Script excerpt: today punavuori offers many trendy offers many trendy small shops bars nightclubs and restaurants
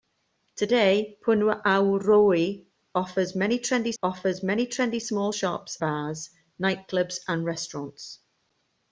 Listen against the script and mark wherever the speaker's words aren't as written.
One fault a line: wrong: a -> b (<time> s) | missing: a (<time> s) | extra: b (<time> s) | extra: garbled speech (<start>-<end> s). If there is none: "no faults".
no faults